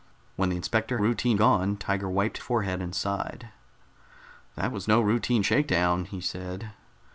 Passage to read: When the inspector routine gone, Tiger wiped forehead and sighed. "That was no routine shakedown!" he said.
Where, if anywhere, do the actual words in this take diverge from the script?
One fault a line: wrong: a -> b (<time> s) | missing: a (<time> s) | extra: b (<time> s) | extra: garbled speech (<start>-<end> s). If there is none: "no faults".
no faults